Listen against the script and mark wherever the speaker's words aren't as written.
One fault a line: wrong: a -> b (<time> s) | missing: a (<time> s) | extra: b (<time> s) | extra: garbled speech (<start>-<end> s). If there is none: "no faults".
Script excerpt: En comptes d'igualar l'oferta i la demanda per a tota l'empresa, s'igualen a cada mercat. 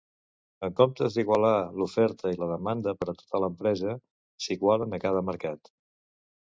no faults